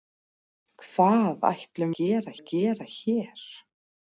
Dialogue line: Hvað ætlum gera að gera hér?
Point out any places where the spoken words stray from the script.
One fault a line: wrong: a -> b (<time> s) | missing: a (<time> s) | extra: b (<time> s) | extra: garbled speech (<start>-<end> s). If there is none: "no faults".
no faults